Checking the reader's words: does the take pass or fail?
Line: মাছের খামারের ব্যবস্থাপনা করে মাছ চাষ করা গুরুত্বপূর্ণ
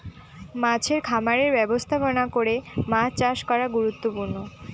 pass